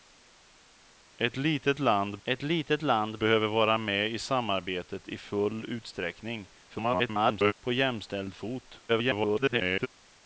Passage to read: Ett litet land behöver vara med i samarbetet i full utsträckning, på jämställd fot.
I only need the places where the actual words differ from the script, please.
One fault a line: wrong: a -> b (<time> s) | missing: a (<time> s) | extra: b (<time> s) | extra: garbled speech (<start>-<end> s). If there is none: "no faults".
extra: ett litet land (2.2 s)
extra: garbled speech (6.7-7.5 s)
extra: garbled speech (8.9-9.9 s)